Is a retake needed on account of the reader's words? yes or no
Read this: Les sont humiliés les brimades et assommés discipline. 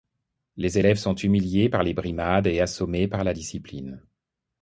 yes